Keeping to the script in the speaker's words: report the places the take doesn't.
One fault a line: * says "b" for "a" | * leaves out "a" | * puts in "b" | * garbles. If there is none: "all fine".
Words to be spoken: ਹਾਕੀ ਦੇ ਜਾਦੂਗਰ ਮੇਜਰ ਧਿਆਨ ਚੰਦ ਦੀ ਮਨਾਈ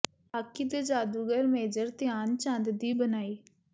all fine